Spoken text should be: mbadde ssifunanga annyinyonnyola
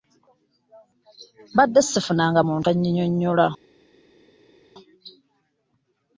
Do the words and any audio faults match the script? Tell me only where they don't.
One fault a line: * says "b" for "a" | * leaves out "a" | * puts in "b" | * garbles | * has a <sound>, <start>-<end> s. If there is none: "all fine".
* puts in "muntu"